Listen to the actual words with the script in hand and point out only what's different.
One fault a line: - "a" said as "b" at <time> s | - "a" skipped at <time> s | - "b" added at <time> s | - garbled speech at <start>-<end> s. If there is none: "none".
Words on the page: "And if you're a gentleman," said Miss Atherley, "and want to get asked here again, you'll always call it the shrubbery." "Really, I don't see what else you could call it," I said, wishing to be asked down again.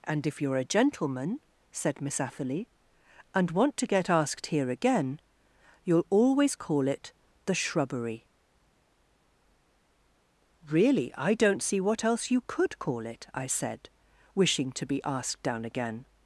none